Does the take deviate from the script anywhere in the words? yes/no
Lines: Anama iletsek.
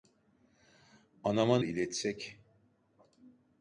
no